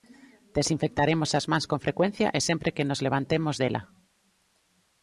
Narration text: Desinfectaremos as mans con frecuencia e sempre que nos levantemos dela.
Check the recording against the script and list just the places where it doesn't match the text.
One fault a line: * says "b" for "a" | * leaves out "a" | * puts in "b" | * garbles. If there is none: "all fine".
all fine